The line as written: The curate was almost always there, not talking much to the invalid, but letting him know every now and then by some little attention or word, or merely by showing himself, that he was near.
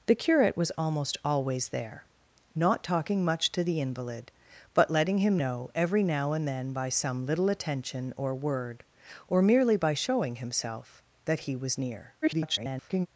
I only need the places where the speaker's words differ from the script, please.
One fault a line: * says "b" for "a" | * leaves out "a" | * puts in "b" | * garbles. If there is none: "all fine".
* garbles